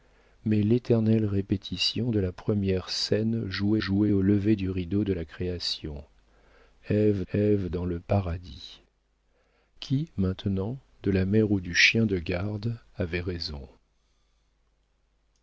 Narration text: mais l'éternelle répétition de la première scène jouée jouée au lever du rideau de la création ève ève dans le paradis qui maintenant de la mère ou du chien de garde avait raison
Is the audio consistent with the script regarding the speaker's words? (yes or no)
yes